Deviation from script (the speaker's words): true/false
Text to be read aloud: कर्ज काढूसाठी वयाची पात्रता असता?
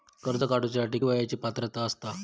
false